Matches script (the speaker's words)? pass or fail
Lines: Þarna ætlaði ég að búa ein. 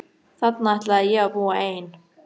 pass